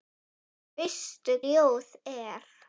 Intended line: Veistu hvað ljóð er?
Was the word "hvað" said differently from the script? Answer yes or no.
yes